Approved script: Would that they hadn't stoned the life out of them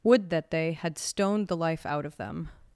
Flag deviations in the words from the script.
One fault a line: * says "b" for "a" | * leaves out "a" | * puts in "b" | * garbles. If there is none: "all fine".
* says "had" for "hadn't"